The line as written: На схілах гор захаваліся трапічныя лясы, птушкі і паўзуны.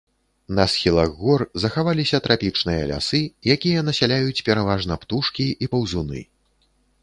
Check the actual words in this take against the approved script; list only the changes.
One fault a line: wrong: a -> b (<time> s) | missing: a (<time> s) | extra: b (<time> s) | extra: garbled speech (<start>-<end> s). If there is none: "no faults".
extra: якія насяляюць пераважна (3.6 s)